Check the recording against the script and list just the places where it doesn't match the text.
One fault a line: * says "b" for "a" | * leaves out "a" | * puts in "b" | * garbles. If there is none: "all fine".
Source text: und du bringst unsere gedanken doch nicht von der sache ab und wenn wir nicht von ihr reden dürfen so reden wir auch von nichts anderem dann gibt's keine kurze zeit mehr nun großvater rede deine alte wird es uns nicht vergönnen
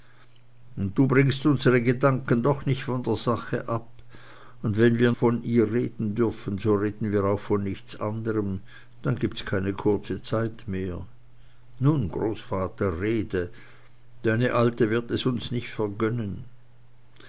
* leaves out "nicht"